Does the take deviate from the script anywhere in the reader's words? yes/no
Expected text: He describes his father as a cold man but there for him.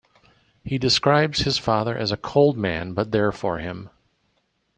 no